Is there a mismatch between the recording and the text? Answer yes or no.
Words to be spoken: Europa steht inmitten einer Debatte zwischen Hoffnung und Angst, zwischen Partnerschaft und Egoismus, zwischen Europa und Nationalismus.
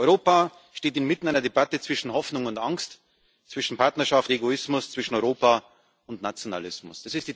yes